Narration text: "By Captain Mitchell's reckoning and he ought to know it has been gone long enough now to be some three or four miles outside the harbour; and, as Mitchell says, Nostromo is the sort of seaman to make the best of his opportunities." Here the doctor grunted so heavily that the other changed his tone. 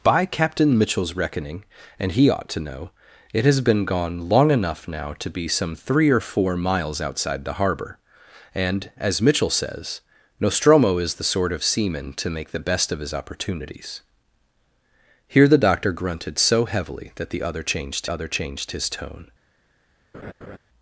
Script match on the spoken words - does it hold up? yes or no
no